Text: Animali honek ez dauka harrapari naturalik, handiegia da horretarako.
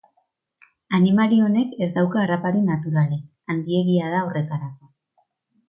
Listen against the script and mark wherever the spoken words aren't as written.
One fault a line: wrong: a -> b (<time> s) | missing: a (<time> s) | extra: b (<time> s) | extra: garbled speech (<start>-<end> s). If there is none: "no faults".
no faults